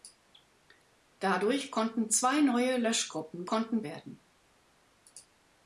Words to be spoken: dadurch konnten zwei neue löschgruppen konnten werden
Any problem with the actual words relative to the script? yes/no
no